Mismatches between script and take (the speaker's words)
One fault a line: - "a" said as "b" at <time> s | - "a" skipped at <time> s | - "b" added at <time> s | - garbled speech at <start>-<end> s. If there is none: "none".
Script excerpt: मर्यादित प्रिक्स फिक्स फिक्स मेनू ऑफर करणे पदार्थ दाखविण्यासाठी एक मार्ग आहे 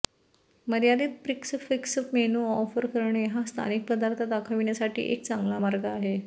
- "फिक्स" skipped at 2.0 s
- "हा स्थानिक" added at 3.3 s
- "चांगला" added at 5.3 s